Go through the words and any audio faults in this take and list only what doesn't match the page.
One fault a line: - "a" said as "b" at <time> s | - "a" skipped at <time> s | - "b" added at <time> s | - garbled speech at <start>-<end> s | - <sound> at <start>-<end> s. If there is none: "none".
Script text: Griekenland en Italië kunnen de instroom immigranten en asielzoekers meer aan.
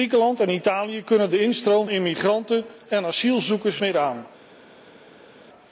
none